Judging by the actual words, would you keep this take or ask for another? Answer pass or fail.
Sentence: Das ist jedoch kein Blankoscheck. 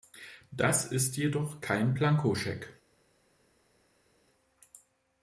pass